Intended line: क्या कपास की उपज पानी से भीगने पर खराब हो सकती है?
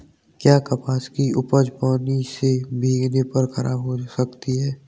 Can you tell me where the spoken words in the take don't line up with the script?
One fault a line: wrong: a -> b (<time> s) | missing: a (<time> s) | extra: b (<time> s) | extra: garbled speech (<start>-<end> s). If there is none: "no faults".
no faults